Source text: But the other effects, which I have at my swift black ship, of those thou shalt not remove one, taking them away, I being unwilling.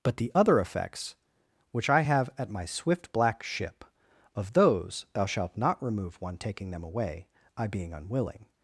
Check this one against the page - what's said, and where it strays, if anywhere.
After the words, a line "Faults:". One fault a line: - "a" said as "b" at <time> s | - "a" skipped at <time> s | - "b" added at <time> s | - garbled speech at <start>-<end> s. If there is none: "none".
But the other effects, which I have at my swift black ship, of those thou shalt not remove one, taking them away, I being unwilling.
Faults:
none